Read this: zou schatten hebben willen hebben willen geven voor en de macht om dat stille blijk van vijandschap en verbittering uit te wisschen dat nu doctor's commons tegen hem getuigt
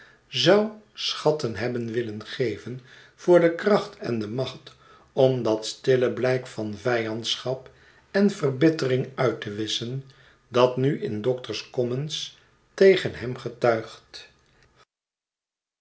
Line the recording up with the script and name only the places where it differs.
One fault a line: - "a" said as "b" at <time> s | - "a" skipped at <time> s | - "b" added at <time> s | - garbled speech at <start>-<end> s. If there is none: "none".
- "hebben willen geven voor" said as "geven voor de kracht" at 2.2 s
- "in" added at 11.0 s